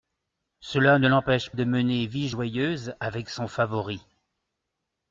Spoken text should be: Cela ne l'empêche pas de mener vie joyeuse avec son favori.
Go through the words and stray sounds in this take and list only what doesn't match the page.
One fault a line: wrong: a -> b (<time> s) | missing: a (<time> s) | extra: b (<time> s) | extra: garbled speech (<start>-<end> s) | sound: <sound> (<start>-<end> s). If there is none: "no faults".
missing: pas (1.5 s)